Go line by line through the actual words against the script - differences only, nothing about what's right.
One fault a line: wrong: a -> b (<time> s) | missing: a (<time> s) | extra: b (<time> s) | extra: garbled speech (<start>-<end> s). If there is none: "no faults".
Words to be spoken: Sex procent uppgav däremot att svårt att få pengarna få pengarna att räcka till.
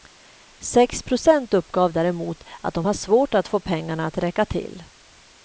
extra: de har (2.7 s)
missing: få pengarna (4.0 s)